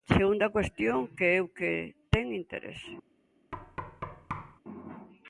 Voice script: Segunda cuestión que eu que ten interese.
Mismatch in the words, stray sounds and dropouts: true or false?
true